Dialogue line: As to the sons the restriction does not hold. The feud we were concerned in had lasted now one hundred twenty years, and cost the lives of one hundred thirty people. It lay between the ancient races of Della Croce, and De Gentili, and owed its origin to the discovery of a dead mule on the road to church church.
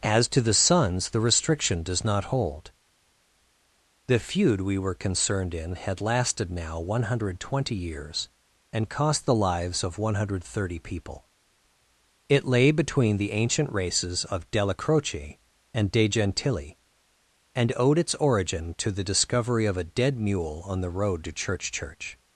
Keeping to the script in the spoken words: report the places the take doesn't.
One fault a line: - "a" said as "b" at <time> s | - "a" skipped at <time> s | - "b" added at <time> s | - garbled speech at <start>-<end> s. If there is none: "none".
none